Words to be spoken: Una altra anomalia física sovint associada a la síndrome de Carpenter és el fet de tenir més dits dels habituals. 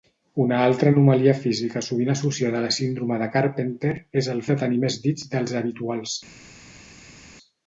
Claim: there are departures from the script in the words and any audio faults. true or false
true